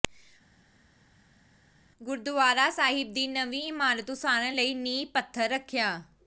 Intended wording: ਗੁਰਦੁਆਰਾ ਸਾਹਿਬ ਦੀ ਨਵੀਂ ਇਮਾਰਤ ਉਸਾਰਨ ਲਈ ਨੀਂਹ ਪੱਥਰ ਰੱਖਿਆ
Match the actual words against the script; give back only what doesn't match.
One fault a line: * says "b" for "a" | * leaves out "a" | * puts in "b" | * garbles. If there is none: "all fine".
all fine